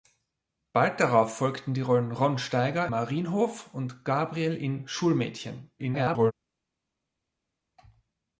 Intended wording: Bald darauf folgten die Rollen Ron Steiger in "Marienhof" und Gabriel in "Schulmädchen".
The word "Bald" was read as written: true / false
true